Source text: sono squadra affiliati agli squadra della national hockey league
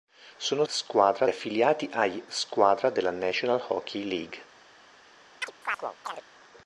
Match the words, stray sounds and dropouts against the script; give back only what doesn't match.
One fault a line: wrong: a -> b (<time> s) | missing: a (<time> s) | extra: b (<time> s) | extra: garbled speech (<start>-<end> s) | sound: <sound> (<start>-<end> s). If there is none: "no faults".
sound: chirp (5.4-6.2 s)